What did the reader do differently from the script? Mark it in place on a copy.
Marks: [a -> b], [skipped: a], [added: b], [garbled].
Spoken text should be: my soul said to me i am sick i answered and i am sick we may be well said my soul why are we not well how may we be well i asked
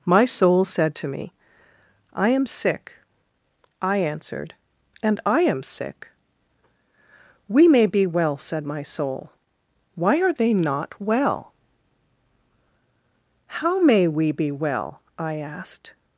my soul said to me i am sick i answered and i am sick we may be well said my soul why are [we -> they] not well how may we be well i asked